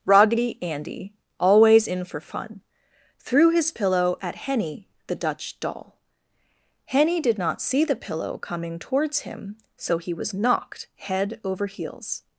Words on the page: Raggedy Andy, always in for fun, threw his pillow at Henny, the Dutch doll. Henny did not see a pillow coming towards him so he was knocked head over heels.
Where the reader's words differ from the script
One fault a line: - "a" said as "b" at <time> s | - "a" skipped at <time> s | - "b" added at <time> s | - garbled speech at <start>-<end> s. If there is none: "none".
- "a" said as "the" at 7.8 s